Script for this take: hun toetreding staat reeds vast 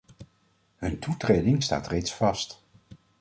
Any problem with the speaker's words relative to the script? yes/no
no